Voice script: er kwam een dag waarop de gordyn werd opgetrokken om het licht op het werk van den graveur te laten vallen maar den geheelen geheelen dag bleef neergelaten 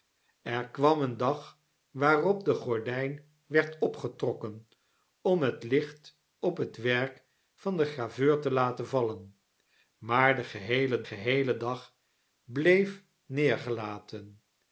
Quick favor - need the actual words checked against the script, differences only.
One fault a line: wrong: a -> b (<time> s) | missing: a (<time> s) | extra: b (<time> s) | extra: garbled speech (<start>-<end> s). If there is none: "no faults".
no faults